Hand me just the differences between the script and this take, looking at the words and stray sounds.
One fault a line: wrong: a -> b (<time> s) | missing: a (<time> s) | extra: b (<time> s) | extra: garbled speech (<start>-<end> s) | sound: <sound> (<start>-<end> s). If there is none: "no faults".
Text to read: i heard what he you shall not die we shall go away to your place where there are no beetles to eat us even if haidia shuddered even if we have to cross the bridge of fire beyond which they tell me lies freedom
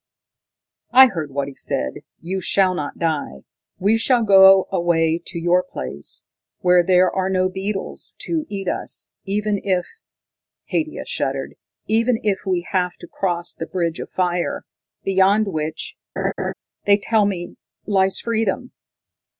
extra: said (1.5 s)
sound: laugh (16.2-16.5 s)